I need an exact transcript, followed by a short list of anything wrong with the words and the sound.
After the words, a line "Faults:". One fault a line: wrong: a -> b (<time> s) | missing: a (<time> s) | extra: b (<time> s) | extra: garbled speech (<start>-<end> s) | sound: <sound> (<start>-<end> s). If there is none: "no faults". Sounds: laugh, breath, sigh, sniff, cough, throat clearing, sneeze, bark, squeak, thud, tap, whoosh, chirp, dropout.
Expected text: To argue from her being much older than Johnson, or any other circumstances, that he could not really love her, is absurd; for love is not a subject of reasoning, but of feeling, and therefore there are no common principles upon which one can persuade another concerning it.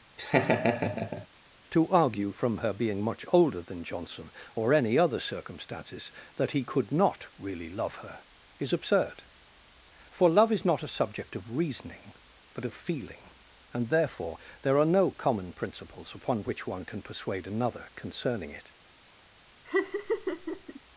To argue from her being much older than Johnson, or any other circumstances, that he could not really love her, is absurd; for love is not a subject of reasoning, but of feeling, and therefore there are no common principles upon which one can persuade another concerning it.
Faults:
sound: laugh (0.2-1.3 s)
sound: laugh (19.6-20.8 s)